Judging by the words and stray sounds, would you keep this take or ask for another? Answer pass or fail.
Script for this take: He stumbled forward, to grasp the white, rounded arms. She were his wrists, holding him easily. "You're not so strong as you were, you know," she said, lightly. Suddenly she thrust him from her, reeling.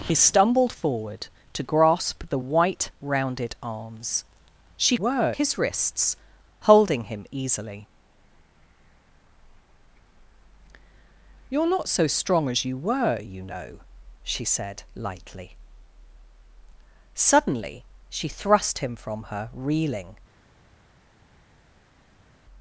pass